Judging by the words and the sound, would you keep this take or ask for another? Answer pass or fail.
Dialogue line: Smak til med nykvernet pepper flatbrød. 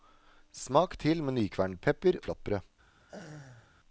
fail